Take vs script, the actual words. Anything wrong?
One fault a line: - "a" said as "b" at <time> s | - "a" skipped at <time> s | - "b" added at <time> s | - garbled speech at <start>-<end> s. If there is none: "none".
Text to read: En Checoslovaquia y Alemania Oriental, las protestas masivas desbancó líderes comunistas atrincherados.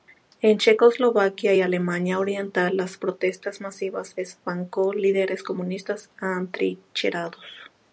none